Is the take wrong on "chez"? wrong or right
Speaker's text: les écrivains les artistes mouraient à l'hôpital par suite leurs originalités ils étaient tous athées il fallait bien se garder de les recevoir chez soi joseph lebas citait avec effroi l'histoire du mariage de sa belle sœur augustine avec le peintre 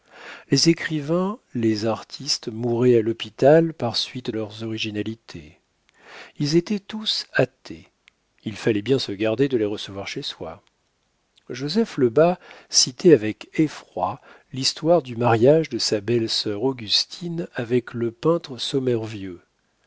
right